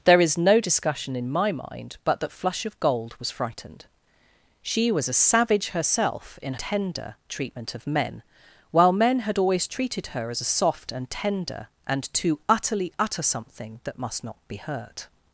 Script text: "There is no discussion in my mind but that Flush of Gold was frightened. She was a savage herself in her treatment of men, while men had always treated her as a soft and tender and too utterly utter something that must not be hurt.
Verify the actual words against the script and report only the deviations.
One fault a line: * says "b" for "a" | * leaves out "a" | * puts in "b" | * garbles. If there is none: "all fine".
* says "tender" for "her"